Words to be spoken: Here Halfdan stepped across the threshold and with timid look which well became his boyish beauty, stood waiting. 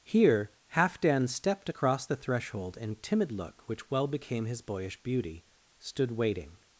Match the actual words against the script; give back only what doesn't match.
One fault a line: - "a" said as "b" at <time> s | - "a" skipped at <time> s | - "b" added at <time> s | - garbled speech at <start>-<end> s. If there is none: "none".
- "with" skipped at 3.0 s